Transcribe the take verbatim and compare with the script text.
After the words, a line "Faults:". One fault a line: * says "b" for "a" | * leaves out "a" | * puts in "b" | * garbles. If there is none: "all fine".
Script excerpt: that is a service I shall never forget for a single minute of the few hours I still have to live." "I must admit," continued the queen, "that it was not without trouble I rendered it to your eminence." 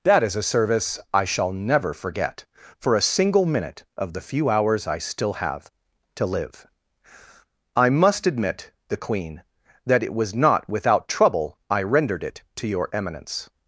that is a service I shall never forget for a single minute of the few hours I still have to live." "I must admit," the queen, "that it was not without trouble I rendered it to your eminence."
Faults:
* leaves out "continued"